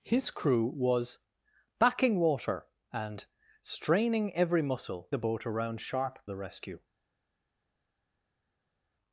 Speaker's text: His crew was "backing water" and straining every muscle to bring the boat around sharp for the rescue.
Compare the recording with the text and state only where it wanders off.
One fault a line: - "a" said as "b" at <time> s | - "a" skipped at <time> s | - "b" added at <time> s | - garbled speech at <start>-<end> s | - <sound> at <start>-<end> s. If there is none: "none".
- "to bring" skipped at 5.1 s
- "for" skipped at 6.2 s